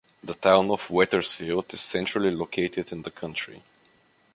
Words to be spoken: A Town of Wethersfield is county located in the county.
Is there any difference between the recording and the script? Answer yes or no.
yes